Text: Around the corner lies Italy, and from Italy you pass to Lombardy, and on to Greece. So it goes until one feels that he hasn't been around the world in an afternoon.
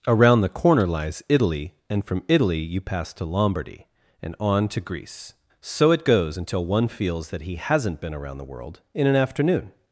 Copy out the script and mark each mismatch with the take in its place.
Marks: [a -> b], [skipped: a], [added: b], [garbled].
Around the corner lies Italy, and from Italy you pass to Lombardy, and on to Greece. So it goes until one feels that he hasn't been around the world in an afternoon.